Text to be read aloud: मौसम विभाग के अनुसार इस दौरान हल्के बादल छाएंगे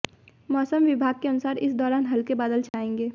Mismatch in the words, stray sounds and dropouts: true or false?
true